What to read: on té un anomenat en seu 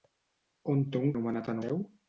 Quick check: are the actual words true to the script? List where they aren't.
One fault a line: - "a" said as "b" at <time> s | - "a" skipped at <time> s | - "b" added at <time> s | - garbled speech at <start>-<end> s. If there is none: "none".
none